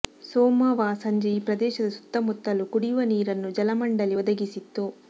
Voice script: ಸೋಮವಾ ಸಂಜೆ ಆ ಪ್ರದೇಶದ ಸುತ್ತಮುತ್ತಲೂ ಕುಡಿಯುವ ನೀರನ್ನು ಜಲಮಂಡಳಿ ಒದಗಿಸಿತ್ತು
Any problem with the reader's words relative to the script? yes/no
yes